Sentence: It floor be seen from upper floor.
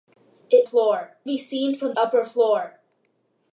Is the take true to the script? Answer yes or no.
yes